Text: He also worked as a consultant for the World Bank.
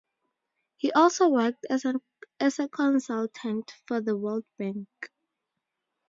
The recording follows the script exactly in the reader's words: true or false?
true